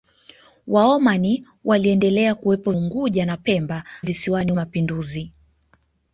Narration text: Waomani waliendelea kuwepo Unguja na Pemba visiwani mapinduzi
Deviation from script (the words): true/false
false